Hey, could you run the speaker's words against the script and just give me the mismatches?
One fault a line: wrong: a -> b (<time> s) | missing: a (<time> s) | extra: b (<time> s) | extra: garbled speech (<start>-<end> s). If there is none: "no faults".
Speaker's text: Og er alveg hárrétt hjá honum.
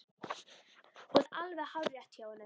no faults